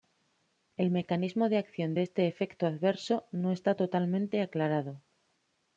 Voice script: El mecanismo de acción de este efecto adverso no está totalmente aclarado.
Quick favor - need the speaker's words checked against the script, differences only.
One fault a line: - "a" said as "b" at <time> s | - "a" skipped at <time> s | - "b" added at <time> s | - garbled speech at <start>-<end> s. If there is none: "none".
none